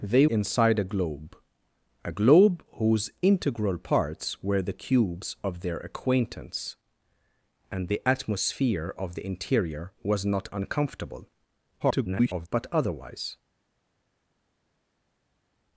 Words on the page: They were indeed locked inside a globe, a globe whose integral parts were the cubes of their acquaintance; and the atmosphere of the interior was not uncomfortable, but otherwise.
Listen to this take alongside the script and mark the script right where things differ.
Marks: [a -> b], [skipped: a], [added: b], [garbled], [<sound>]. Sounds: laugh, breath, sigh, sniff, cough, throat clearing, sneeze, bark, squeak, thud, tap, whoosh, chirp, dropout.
They [skipped: were indeed locked] inside a globe, a globe whose integral parts were the cubes of their acquaintance; and the atmosphere of the interior was not uncomfortable, [garbled] but otherwise.